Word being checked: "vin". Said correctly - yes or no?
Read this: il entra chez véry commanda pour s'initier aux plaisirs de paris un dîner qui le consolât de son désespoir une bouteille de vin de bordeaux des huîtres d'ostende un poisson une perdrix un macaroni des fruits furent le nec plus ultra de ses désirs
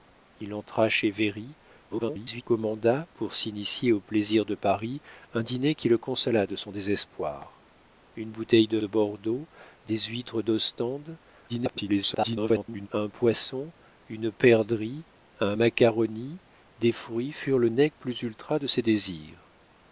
no